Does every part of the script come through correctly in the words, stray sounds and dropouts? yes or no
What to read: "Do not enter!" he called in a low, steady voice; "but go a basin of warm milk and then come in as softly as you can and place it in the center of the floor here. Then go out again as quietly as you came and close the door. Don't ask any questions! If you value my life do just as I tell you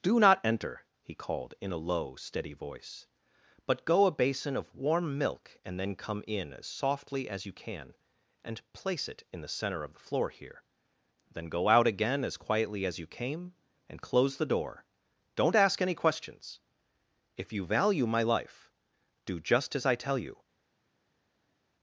yes